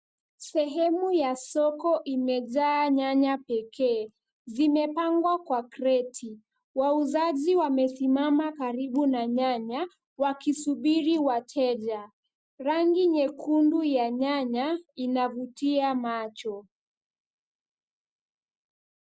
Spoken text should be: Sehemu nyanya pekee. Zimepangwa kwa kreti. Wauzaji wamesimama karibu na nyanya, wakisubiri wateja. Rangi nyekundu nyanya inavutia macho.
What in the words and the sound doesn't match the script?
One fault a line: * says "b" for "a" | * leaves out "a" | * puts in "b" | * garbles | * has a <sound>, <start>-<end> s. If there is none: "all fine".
* puts in "ya soko imejaa"
* puts in "ya"